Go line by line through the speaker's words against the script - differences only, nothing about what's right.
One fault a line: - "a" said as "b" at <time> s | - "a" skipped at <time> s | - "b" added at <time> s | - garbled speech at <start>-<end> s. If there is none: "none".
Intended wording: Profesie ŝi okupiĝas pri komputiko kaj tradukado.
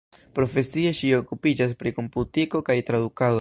none